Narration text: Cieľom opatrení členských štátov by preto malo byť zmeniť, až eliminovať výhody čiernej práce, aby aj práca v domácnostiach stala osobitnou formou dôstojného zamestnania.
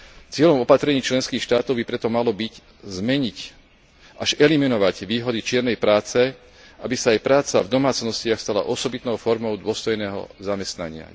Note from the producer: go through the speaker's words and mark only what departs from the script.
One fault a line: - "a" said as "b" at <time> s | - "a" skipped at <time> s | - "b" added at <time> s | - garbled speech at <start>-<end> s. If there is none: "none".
- "sa" added at 7.0 s